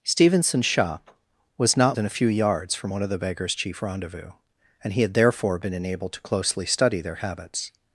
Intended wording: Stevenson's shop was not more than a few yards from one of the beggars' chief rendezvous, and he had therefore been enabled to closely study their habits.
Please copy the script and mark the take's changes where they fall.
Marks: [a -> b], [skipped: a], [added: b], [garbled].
Stevenson's shop was not [skipped: more] than a few yards from one of the beggars' chief rendezvous, and he had therefore been enabled to closely study their habits.